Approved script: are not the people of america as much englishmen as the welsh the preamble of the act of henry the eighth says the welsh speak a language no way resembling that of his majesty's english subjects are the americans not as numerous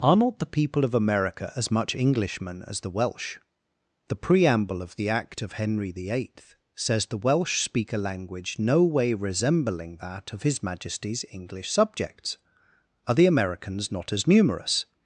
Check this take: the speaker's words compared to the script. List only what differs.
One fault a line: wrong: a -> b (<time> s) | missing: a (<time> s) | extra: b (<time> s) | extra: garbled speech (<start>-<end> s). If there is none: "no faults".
no faults